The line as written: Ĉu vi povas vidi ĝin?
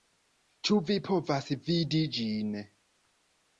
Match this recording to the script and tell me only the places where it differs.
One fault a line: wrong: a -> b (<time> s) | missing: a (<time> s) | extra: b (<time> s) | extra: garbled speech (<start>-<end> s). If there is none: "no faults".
no faults